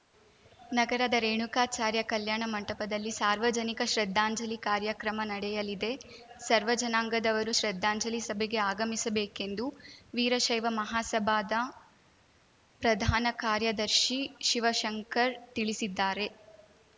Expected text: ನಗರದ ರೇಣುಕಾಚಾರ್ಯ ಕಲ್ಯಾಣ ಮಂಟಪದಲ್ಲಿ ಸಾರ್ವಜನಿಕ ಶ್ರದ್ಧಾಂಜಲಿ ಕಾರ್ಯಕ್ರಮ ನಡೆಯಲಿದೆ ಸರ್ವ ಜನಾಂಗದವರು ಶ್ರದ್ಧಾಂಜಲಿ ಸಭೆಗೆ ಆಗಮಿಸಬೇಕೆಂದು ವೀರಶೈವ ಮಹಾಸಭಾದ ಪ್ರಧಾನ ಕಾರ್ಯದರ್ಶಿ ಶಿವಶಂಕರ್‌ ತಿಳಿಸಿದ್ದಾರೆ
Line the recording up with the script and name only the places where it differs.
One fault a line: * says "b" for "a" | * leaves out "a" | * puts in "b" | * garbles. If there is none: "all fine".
all fine